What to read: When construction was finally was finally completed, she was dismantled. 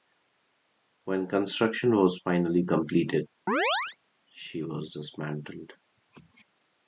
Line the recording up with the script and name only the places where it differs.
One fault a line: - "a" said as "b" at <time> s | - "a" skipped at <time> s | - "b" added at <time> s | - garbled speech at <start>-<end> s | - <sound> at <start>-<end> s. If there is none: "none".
- "was finally" skipped at 2.6 s
- chirp at 3.5-4.0 s